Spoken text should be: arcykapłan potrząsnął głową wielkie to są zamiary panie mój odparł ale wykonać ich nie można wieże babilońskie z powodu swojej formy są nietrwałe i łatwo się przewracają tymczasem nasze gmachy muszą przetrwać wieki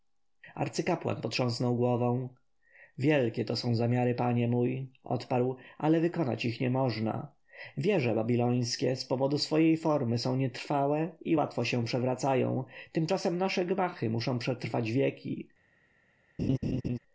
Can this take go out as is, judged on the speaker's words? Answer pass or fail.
pass